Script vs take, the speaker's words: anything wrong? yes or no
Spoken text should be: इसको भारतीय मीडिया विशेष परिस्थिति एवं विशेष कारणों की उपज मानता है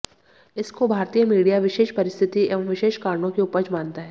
no